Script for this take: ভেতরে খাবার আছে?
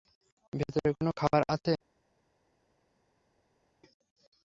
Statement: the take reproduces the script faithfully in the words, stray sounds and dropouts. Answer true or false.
false